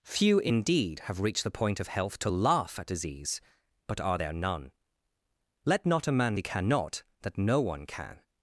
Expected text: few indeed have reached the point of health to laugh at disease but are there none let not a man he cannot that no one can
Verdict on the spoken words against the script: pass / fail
pass